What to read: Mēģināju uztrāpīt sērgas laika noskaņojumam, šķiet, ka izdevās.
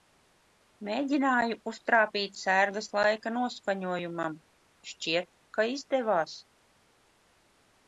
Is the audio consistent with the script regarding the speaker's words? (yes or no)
yes